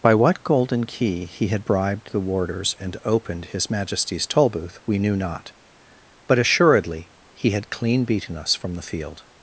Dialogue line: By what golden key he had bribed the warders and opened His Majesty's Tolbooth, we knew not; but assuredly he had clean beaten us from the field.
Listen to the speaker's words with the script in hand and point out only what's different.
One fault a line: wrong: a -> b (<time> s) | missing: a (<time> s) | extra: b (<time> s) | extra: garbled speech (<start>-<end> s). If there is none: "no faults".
no faults